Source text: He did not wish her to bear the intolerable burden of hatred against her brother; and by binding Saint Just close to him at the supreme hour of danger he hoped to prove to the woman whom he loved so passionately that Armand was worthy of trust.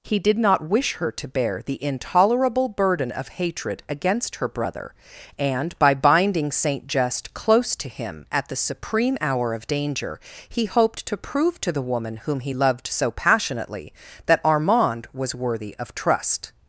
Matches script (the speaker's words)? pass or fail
pass